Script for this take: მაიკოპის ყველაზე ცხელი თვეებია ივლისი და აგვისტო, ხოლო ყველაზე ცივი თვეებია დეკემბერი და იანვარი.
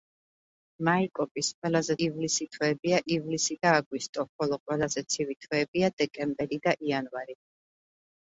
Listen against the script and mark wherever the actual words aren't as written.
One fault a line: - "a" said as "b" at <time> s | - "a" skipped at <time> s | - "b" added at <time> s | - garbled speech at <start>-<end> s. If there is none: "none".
- "ცხელი" said as "ივლისი" at 2.1 s